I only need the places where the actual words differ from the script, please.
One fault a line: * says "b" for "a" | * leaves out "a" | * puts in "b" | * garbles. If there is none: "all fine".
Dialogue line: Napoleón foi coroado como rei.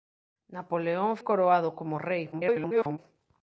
* leaves out "foi"
* garbles